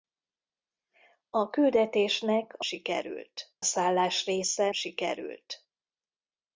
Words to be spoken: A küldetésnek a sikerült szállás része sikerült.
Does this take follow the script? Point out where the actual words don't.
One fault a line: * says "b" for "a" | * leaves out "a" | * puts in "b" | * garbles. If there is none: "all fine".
all fine